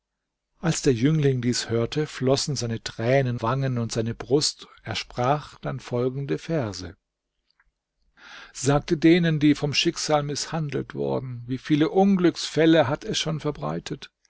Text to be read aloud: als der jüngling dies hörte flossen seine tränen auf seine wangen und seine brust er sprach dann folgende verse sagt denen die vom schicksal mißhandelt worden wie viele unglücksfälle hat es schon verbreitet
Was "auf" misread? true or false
true